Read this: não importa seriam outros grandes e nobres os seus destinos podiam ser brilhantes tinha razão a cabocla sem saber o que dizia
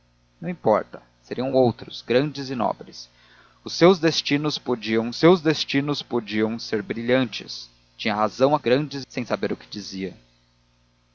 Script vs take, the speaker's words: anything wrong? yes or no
yes